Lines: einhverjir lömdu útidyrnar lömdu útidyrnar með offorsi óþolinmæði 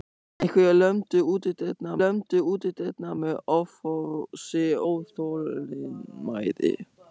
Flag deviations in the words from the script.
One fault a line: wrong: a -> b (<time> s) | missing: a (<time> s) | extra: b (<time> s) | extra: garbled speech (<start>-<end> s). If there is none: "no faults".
no faults